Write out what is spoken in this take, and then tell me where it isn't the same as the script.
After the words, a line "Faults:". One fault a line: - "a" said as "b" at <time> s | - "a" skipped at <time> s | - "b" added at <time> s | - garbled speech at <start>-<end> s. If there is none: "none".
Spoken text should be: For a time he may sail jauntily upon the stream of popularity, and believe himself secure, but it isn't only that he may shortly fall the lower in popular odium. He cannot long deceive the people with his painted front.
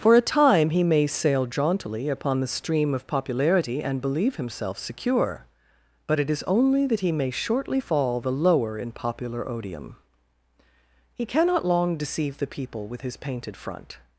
For a time he may sail jauntily upon the stream of popularity, and believe himself secure, but it is only that he may shortly fall the lower in popular odium. He cannot long deceive the people with his painted front.
Faults:
- "isn't" said as "is" at 6.3 s